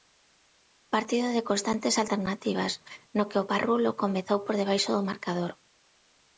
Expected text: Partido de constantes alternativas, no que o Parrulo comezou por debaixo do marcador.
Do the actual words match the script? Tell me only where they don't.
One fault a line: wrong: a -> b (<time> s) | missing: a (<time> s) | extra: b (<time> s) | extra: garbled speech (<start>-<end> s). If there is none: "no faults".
no faults